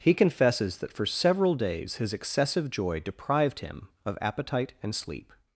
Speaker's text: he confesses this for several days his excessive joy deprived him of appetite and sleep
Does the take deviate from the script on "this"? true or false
true